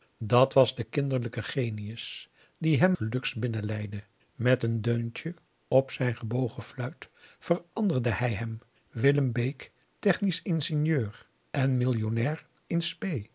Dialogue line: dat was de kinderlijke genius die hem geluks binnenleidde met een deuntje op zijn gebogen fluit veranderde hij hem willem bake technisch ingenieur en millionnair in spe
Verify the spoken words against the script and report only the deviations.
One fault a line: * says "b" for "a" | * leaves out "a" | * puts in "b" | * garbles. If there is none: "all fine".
all fine